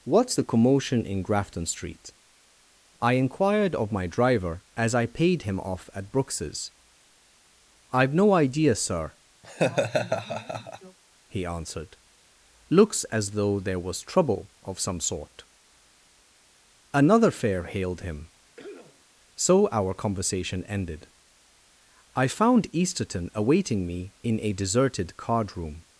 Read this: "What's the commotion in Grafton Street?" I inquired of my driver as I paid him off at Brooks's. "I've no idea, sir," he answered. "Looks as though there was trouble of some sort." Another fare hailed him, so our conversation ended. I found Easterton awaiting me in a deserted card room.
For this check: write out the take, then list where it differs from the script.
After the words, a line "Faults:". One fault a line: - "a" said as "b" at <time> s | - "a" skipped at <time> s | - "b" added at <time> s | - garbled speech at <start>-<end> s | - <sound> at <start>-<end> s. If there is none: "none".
"What's the commotion in Grafton Street?" I inquired of my driver as I paid him off at Brooks's. "I've no idea, sir," he answered. "Looks as though there was trouble of some sort." Another fare hailed him, so our conversation ended. I found Easterton awaiting me in a deserted card room.
Faults:
- laugh at 9.4-11.0 s
- cough at 18.6-19.1 s